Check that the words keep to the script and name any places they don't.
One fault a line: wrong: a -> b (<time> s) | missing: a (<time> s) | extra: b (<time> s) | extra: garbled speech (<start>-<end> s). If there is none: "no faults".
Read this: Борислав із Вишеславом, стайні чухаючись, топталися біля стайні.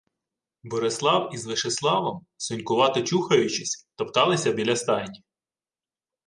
wrong: стайні -> сонькувато (2.4 s)